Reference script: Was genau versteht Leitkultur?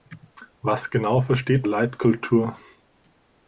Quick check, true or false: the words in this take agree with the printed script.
true